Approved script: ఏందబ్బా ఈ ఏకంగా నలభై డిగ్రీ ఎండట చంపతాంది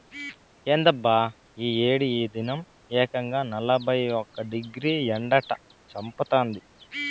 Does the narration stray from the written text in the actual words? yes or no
yes